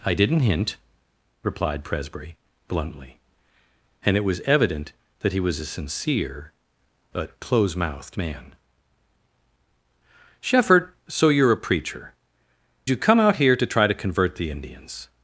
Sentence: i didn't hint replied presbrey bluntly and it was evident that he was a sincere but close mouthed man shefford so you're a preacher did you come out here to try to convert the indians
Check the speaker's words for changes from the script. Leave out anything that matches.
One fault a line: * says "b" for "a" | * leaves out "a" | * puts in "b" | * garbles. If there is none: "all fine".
* leaves out "did"